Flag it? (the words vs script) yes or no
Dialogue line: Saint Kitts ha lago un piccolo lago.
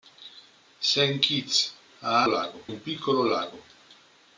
no